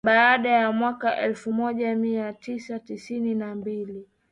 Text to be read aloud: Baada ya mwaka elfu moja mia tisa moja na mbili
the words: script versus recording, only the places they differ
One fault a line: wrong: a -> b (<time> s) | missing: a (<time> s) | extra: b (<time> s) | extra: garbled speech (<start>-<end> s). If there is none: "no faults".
wrong: moja -> tisini (2.8 s)